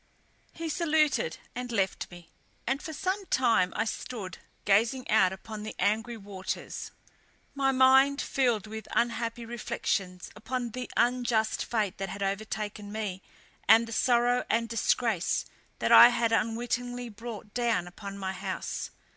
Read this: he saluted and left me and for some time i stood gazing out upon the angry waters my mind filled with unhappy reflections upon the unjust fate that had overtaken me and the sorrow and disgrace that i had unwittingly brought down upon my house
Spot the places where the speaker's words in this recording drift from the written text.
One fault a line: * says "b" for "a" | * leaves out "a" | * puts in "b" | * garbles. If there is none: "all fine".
all fine